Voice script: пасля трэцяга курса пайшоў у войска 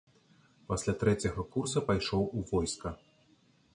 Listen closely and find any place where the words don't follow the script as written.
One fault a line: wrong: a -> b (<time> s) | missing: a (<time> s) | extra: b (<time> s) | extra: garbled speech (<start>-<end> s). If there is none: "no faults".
no faults